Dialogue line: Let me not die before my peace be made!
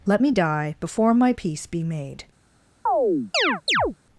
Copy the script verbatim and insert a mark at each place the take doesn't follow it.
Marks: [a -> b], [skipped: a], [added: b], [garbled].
Let me [skipped: not] die before my peace be made!